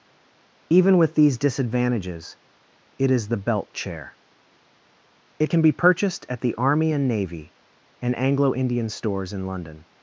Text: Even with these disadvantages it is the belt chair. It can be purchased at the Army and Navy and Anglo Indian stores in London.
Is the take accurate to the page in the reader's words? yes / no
yes